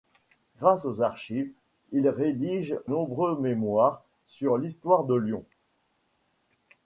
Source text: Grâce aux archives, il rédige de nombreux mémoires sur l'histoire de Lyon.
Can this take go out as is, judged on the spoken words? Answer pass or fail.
fail